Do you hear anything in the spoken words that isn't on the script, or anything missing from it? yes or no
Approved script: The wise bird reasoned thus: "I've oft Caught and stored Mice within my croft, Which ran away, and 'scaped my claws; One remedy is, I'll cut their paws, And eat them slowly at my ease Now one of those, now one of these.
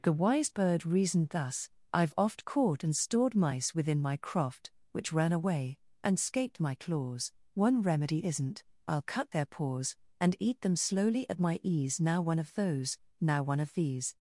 yes